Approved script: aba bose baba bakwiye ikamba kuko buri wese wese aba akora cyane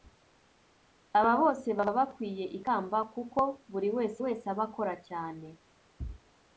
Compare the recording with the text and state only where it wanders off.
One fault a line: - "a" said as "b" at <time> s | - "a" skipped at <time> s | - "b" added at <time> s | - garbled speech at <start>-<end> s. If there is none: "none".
none